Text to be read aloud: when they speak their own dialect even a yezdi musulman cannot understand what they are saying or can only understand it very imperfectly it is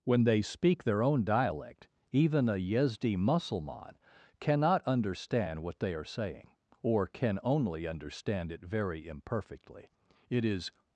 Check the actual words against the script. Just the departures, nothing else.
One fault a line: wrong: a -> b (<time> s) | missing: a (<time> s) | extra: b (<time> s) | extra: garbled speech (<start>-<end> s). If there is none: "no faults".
no faults